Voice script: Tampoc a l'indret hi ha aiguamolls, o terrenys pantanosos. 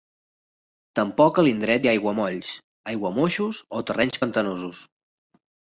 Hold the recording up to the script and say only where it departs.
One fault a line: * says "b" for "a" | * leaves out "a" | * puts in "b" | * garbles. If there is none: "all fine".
* puts in "aiguamoixos"